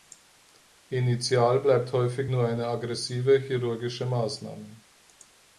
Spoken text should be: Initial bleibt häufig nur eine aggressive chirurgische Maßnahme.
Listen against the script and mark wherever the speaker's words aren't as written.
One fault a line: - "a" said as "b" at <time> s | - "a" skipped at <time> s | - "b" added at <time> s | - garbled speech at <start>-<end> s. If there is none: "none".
none